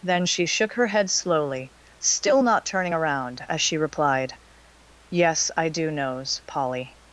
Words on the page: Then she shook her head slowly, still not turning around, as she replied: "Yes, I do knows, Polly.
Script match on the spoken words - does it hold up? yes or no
yes